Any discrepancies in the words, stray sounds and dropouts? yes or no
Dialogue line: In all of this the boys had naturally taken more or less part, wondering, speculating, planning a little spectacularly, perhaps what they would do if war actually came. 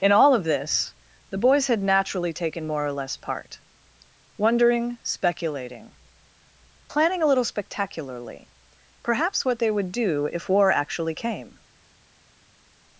no